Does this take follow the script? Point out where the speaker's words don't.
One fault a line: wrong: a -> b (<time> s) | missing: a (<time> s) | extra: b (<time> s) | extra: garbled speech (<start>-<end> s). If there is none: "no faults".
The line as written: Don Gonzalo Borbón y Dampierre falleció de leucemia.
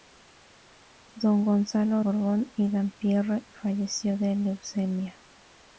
no faults